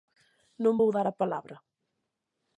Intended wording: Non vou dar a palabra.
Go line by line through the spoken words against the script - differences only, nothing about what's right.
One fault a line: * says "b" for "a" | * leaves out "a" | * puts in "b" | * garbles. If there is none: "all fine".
all fine